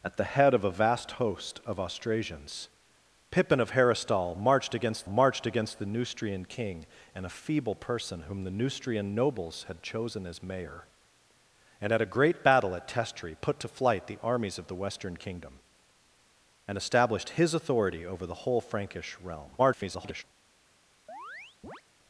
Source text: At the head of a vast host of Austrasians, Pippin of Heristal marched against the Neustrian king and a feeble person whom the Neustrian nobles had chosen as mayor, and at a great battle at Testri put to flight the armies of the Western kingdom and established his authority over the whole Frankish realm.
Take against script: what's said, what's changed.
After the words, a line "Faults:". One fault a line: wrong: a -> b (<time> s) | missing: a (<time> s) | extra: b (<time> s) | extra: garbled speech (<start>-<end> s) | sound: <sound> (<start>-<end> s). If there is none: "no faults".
At the head of a vast host of Austrasians, Pippin of Heristal marched against marched against the Neustrian king and a feeble person whom the Neustrian nobles had chosen as mayor, and at a great battle at Testri put to flight the armies of the Western kingdom and established his authority over the whole Frankish realm. [garbled]
Faults:
extra: marched against (5.0 s)
extra: garbled speech (19.6-20.2 s)
sound: chirp (21.1-21.8 s)